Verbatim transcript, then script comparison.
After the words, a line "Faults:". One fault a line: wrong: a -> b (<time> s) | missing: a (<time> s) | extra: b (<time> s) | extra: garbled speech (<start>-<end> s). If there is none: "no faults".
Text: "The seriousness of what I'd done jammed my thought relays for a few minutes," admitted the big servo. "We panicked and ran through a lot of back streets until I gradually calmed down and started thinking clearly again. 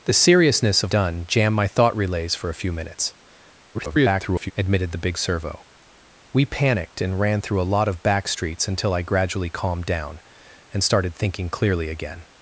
"The seriousness of done jammed my thought relays for a few minutes," [garbled] admitted the big servo. "We panicked and ran through a lot of back streets until I gradually calmed down and started thinking clearly again.
Faults:
missing: what I'd (0.9 s)
extra: garbled speech (3.7-4.5 s)